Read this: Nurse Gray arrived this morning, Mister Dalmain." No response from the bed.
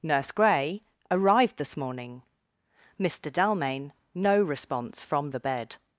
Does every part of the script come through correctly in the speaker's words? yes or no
yes